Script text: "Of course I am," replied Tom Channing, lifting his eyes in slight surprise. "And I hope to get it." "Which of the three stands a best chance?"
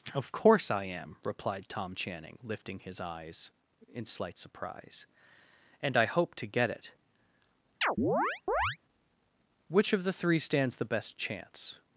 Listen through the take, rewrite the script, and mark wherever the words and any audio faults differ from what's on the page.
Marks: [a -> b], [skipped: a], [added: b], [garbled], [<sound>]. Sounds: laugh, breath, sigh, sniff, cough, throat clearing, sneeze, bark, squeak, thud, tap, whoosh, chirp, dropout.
"Of course I am," replied Tom Channing, lifting his eyes in slight surprise. "And I hope to get it." [chirp] "Which of the three stands [a -> the] best chance?"